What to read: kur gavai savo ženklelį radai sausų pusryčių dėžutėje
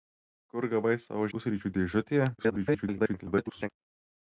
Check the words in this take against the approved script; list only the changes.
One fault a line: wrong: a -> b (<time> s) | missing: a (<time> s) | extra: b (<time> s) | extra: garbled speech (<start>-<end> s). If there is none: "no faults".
missing: ženklelį radai sausų (1.3 s)
extra: garbled speech (2.4-3.7 s)